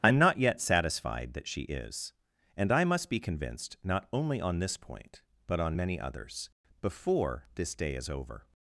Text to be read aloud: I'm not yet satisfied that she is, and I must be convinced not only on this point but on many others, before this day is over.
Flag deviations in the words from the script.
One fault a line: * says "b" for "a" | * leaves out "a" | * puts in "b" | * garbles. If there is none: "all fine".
all fine